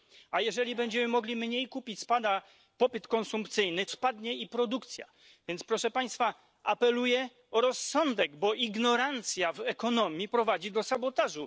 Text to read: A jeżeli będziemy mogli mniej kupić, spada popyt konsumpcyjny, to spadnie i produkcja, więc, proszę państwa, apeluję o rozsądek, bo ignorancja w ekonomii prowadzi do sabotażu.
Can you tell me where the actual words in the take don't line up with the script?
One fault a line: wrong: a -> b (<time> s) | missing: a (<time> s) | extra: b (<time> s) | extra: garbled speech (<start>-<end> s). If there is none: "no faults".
missing: to (3.9 s)